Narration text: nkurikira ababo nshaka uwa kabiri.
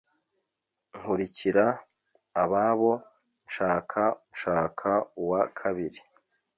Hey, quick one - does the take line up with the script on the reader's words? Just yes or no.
no